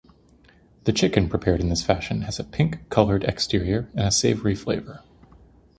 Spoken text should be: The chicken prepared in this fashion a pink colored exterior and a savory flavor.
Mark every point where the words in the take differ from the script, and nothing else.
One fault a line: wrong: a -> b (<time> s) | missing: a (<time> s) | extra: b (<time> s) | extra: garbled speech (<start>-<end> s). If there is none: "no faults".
extra: has (2.2 s)